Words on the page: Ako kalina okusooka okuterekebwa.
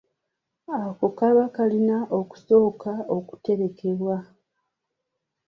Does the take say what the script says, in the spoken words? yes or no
no